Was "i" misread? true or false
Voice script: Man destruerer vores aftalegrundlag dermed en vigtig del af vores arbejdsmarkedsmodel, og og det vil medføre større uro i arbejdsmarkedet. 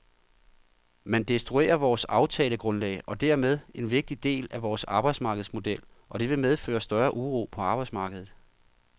true